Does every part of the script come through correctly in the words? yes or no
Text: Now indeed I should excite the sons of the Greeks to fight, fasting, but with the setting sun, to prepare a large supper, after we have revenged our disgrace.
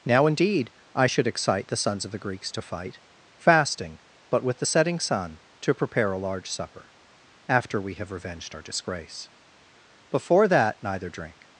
no